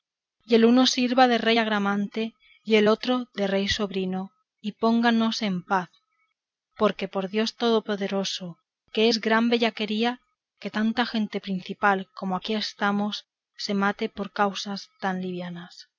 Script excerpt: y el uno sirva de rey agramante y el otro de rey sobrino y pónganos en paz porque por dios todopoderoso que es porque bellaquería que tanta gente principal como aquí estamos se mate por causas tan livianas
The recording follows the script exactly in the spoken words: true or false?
false